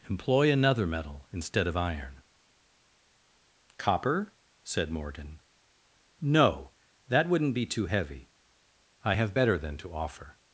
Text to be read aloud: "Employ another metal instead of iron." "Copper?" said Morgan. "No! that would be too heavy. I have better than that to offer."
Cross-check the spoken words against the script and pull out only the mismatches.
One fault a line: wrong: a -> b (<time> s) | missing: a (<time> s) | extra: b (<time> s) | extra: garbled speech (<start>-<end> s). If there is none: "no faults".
wrong: would -> wouldn't (7.3 s)
missing: that (9.8 s)